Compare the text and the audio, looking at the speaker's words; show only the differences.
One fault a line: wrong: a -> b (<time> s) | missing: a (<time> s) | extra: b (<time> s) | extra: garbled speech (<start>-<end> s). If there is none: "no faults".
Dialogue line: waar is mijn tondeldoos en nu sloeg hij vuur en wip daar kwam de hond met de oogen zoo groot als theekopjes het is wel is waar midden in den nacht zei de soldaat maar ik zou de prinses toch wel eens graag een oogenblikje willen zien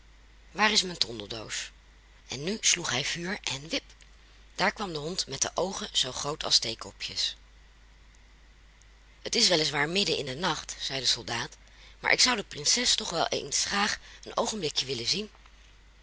no faults